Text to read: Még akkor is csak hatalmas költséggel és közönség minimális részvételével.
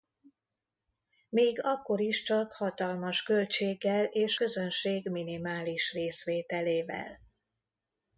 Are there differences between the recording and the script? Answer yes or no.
no